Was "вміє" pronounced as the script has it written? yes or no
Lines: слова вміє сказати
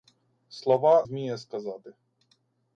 yes